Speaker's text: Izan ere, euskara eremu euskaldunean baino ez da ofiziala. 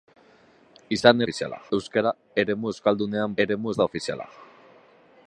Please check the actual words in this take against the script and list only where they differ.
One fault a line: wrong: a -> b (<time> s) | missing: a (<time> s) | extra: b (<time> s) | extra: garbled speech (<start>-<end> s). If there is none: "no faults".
wrong: ere -> ofiziala (1.2 s)
wrong: baino -> eremu (3.5 s)